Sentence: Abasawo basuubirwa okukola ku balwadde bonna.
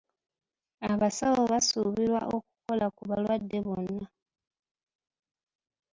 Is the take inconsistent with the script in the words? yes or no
no